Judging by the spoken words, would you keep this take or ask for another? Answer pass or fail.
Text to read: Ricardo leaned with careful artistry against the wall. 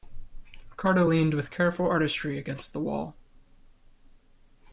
pass